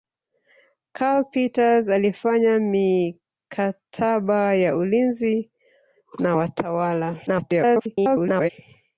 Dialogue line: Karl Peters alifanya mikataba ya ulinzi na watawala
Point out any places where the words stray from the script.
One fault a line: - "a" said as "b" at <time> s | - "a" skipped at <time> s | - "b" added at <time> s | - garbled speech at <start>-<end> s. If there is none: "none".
- garbled speech at 7.3-8.5 s